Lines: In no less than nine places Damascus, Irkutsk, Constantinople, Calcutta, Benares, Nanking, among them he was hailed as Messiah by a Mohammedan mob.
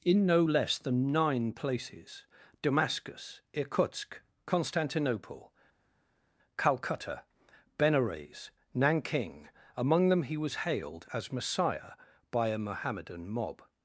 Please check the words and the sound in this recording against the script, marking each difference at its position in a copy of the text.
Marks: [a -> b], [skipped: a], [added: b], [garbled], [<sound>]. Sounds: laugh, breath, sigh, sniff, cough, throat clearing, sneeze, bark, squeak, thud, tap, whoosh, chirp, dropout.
In no less than nine places Damascus, Irkutsk, Constantinople, Calcutta, Benares, Nanking, among them he was hailed as Messiah by a Mohammedan mob.